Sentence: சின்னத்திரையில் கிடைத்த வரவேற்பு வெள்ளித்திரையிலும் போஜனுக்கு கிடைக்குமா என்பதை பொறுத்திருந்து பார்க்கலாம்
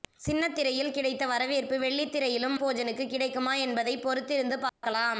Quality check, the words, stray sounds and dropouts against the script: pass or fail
fail